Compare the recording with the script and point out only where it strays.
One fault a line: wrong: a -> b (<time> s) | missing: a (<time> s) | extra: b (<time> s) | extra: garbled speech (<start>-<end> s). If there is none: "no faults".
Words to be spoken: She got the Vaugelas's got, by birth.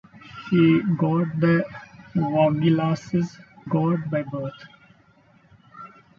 no faults